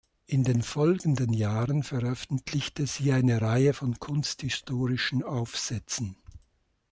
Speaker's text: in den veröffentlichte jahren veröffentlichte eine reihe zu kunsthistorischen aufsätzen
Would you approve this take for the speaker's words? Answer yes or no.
no